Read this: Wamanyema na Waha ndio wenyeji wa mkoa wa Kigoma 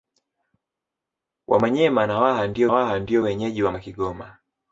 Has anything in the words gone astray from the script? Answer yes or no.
yes